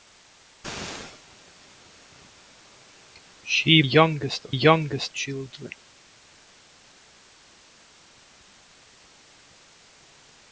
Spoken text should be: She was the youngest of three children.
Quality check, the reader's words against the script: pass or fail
fail